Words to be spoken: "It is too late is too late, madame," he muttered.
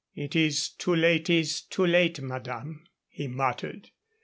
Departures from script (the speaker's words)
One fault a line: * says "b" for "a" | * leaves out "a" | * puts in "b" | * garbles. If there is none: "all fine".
all fine